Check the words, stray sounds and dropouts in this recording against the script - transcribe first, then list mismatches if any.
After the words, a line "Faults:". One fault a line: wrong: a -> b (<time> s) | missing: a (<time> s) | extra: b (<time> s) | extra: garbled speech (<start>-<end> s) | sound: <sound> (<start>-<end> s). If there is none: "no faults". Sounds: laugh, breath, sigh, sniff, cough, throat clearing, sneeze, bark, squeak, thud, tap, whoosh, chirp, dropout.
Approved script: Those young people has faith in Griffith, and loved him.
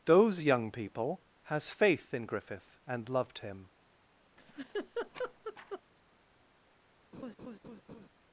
Those young people has faith in Griffith, and loved him.
Faults:
sound: laugh (4.4-5.8 s)
sound: laugh (7.1-8.1 s)